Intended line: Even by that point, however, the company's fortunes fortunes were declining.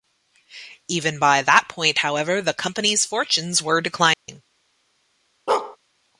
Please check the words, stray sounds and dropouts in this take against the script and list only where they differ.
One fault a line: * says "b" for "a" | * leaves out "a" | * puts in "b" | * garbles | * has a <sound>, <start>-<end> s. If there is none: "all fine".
* leaves out "fortunes"
* has a dropout, 4.1-4.3 s
* has a bark, 5.5-5.8 s